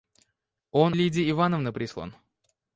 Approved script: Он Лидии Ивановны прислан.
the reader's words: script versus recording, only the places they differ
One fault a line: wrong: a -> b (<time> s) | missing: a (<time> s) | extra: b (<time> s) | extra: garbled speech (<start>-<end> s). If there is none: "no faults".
no faults